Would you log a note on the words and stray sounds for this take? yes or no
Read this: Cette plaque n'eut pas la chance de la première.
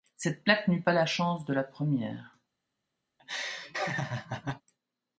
yes